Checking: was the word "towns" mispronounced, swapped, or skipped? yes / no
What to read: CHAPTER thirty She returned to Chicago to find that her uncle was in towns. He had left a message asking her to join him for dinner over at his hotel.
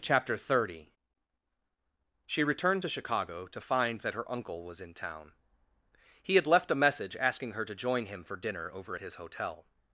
yes